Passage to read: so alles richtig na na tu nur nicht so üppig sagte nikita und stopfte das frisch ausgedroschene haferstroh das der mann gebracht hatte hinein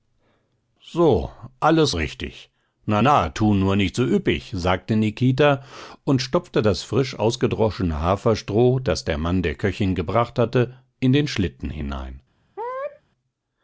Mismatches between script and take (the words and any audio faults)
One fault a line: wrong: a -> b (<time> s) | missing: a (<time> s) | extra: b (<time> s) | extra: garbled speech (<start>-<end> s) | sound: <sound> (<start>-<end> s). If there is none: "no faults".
extra: der köchin (9.4 s)
extra: in den schlitten (11.0 s)
sound: sneeze (12.6-13.0 s)